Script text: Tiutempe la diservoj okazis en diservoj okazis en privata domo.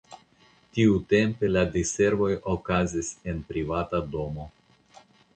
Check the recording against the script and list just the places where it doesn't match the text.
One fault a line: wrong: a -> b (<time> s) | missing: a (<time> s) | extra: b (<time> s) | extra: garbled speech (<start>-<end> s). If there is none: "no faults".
missing: diservoj okazis en (3.4 s)